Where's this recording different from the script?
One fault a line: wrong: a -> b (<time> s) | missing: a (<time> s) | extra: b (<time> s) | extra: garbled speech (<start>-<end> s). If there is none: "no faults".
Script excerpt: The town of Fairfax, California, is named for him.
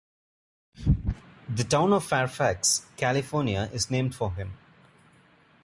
no faults